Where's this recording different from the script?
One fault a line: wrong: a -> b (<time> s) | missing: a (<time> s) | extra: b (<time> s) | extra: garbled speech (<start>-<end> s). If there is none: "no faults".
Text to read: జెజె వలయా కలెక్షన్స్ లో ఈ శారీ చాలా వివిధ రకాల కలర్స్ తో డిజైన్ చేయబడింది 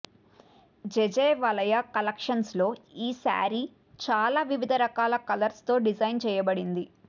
no faults